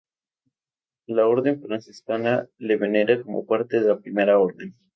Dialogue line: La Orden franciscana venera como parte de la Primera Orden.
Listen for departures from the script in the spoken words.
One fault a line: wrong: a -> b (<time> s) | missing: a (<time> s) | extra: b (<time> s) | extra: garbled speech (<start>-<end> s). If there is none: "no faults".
extra: le (2.6 s)